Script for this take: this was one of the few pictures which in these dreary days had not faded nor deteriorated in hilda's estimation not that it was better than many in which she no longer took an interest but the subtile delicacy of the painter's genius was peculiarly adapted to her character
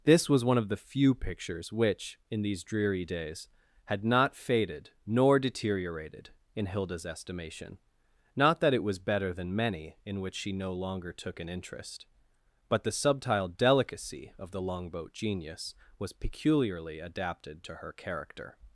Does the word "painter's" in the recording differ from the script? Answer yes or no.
yes